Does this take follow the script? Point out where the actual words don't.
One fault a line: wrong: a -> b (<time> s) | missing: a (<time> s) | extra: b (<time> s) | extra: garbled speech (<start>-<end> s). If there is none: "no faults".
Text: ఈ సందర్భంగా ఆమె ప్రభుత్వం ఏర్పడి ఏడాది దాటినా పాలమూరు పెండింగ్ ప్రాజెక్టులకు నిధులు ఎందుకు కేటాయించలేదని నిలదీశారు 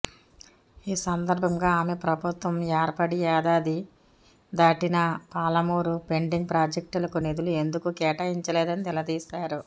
no faults